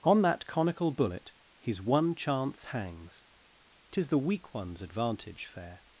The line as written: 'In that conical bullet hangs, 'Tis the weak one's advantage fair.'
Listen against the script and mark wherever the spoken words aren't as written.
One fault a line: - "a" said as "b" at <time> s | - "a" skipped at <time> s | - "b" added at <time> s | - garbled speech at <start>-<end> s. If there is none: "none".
- "In" said as "On" at 0.0 s
- "his one chance" added at 1.6 s